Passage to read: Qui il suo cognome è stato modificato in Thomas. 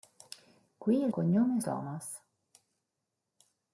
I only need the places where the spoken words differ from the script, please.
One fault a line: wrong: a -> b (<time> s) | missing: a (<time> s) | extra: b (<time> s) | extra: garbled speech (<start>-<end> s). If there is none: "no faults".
missing: suo (1.1 s)
missing: stato modificato in (1.6 s)